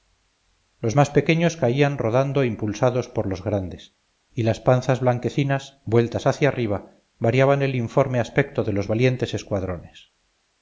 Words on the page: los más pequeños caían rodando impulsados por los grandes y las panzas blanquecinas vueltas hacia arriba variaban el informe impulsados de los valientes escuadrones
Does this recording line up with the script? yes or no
no